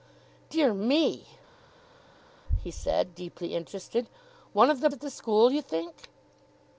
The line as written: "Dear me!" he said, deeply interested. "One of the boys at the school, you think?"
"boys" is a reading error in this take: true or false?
true